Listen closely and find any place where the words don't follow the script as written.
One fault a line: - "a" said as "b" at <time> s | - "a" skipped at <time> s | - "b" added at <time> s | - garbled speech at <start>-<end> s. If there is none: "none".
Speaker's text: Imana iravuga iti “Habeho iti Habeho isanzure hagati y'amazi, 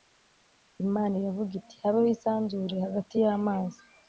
- "iti Habeho" skipped at 2.1 s